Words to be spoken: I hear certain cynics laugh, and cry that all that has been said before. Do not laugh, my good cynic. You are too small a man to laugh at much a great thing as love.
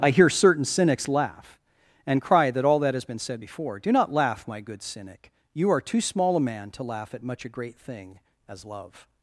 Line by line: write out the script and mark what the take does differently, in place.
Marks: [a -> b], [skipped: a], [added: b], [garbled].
I hear certain cynics laugh, and cry that all that has been said before. Do not laugh, my good cynic. You are too small a man to laugh at much a great thing as love.